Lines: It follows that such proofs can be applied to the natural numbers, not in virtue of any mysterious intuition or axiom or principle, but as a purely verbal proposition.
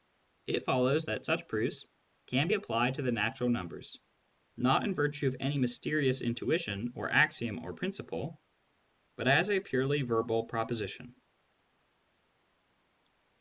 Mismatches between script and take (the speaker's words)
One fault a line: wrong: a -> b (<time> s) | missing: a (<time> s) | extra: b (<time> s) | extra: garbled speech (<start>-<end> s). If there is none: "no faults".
no faults